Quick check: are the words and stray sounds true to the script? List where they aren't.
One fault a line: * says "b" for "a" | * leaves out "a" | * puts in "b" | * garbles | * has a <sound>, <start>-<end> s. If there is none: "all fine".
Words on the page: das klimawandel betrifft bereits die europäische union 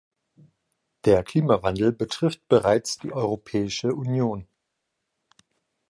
* says "der" for "das"